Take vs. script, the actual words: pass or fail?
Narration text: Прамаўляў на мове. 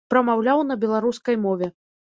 fail